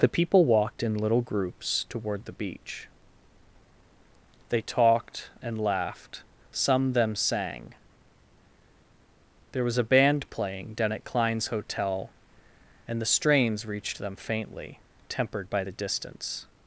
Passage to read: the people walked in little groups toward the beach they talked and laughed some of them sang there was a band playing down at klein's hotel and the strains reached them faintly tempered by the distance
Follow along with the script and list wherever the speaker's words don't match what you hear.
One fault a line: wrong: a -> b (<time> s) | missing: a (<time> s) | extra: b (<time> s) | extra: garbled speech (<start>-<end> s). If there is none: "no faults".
missing: of (6.9 s)